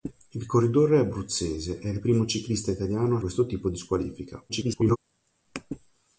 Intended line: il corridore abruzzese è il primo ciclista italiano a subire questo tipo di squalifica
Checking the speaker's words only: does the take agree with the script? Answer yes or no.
no